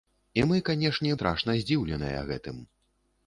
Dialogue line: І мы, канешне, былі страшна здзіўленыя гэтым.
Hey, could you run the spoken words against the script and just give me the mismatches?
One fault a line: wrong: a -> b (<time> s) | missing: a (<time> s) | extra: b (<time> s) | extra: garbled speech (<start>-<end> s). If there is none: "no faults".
missing: былі (1.1 s)